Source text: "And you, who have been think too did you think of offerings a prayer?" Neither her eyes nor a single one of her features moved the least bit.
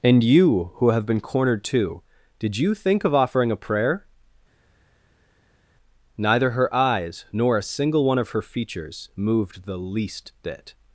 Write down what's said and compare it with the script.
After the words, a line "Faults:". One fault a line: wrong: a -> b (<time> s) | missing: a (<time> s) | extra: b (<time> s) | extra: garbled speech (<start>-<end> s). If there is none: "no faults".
"And you, who have been cornered too did you think of offering a prayer?" Neither her eyes nor a single one of her features moved the least bit.
Faults:
wrong: think -> cornered (1.2 s)
wrong: offerings -> offering (3.1 s)